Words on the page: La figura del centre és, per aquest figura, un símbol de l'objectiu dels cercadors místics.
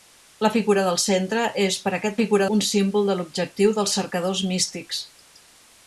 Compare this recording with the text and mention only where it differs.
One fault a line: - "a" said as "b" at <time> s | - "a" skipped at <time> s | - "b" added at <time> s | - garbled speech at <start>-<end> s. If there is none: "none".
none